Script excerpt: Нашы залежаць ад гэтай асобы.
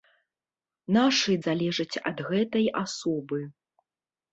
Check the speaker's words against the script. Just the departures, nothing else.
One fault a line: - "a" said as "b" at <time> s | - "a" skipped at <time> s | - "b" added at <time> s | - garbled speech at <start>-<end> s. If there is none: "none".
none